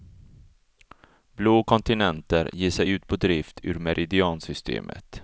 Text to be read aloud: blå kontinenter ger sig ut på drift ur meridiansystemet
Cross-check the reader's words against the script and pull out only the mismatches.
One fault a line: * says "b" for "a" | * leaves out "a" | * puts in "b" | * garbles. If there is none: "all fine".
all fine